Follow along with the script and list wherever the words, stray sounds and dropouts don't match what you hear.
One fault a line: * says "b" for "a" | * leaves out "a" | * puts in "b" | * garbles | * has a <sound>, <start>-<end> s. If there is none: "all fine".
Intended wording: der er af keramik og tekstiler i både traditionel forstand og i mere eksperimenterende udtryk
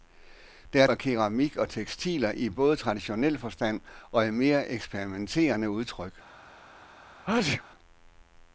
* has a sneeze, 7.2-7.6 s